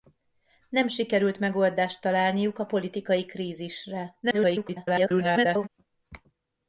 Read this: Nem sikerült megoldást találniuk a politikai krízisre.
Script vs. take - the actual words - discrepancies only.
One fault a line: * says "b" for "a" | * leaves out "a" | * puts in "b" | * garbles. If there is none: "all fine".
* garbles